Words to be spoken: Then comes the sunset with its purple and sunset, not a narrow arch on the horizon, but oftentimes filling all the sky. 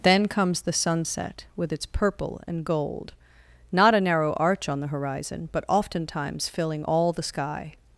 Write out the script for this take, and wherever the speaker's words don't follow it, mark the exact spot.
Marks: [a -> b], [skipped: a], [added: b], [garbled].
Then comes the sunset with its purple and [sunset, -> gold] not a narrow arch on the horizon, but oftentimes filling all the sky.